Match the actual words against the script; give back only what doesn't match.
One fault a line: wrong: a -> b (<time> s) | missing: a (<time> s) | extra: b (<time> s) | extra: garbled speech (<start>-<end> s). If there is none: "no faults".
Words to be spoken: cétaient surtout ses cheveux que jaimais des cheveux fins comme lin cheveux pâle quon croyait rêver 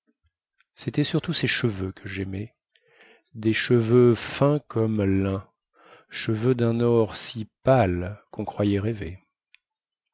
extra: dun or si (6.5 s)